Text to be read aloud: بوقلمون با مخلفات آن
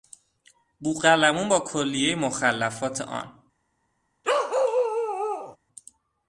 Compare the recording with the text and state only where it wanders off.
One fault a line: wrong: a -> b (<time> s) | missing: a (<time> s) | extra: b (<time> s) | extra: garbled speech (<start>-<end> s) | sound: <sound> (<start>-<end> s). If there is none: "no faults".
extra: کلیهی (1.6 s)
sound: bark (4.2-5.6 s)